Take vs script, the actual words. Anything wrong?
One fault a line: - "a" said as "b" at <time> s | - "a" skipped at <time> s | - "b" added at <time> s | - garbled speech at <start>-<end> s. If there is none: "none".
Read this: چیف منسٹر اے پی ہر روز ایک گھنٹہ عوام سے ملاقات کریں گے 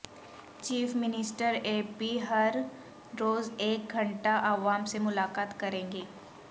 none